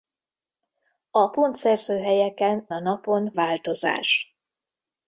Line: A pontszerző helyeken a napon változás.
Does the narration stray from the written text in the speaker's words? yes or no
no